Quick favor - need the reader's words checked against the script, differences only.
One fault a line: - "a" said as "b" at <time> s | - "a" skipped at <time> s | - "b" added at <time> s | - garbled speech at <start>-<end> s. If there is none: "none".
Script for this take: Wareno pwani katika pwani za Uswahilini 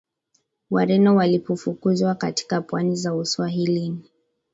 - "pwani" said as "walipofukuzwa" at 1.1 s